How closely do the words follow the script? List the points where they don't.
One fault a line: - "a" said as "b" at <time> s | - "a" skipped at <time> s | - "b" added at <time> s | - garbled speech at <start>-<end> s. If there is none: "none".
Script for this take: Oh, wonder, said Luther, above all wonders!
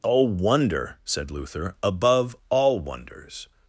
none